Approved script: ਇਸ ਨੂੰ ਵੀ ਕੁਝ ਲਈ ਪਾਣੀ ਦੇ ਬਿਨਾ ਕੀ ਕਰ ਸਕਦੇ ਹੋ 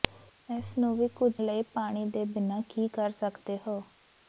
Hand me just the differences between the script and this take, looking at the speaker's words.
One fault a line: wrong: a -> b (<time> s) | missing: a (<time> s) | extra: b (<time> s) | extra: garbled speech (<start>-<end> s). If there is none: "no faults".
no faults